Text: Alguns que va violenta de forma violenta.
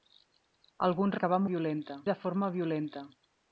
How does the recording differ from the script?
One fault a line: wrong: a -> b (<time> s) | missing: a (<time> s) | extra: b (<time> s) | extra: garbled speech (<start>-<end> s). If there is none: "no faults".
no faults